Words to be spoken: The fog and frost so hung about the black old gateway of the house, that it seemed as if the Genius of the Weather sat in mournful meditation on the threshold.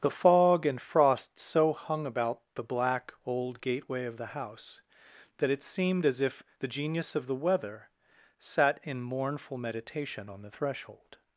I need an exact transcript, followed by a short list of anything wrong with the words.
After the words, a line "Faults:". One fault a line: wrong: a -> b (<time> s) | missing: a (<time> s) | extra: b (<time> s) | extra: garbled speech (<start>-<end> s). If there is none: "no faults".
The fog and frost so hung about the black old gateway of the house, that it seemed as if the Genius of the Weather sat in mournful meditation on the threshold.
Faults:
no faults